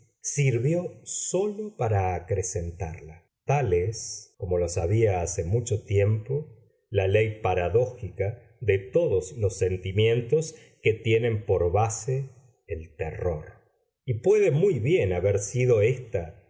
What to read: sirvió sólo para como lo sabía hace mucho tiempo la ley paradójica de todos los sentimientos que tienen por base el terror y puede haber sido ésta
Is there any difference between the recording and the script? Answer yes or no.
yes